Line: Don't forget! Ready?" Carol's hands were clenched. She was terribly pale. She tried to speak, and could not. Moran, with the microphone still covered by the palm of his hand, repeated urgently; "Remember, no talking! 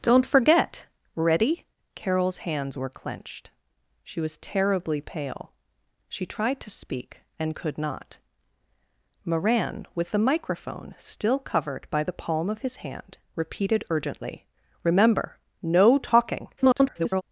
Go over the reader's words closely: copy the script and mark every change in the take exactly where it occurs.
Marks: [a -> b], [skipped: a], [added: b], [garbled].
Don't forget! Ready?" Carol's hands were clenched. She was terribly pale. She tried to speak, and could not. Moran, with the microphone still covered by the palm of his hand, repeated urgently; "Remember, no talking! [garbled]